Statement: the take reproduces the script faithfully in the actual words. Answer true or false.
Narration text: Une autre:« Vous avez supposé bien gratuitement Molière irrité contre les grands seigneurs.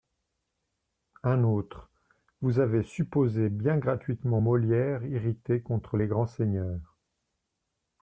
false